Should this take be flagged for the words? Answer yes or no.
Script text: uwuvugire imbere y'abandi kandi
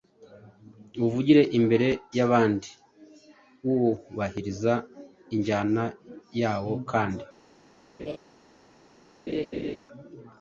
yes